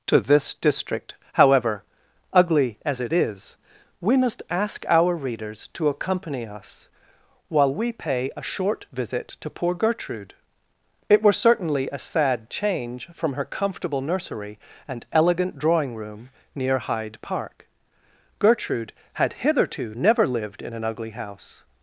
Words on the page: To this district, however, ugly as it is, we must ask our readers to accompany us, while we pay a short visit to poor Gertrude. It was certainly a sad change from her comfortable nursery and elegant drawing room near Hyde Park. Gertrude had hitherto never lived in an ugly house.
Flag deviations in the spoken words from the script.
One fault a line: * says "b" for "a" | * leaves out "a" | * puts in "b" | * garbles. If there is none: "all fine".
* says "were" for "was"